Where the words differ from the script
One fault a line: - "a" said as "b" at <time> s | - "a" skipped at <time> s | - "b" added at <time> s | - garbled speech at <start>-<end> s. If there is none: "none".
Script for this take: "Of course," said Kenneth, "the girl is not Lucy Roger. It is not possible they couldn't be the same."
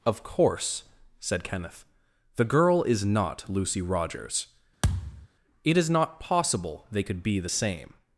- "Roger" said as "Rogers" at 3.8 s
- "couldn't" said as "could" at 7.0 s